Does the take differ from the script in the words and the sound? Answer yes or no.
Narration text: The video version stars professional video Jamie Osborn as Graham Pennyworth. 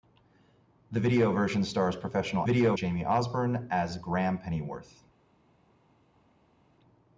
no